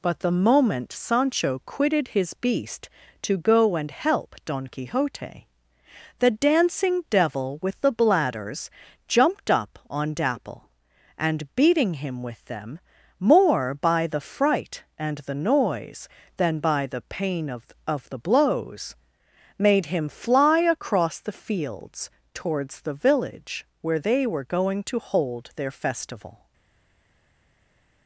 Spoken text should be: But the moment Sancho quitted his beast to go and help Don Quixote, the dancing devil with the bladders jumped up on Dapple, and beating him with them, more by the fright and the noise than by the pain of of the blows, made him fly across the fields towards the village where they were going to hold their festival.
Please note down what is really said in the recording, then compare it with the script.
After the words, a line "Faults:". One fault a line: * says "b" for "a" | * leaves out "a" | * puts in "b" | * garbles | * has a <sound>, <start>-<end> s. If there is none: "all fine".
But the moment Sancho quitted his beast to go and help Don Quixote, the dancing devil with the bladders jumped up on Dapple, and beating him with them, more by the fright and the noise than by the pain of of the blows, made him fly across the fields towards the village where they were going to hold their festival.
Faults:
all fine